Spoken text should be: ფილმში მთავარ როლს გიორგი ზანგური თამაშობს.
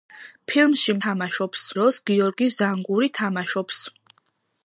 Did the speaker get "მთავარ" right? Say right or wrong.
wrong